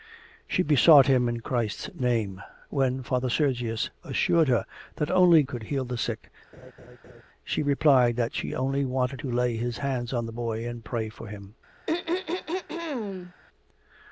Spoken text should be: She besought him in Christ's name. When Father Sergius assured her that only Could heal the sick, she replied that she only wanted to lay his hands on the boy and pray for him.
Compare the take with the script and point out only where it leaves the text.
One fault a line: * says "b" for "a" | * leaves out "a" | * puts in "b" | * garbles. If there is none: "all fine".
all fine